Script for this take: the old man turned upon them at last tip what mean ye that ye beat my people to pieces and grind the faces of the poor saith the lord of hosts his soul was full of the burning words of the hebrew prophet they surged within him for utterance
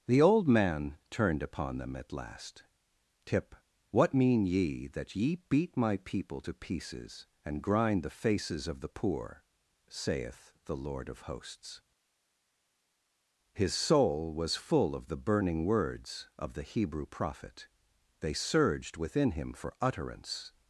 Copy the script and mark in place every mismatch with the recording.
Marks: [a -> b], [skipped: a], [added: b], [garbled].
the old man turned upon them at last tip what mean ye that ye beat my people to pieces and grind the faces of the poor saith the lord of hosts his soul was full of the burning words of the hebrew prophet they surged within him for utterance